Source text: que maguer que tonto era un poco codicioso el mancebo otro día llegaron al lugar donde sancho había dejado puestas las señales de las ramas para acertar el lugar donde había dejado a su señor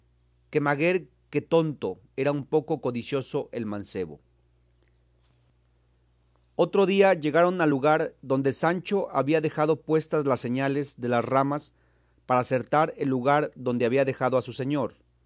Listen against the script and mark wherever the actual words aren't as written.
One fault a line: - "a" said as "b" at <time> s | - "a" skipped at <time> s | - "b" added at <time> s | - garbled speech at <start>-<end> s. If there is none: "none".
none